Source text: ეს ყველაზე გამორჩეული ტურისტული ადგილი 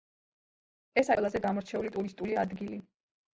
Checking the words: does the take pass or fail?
pass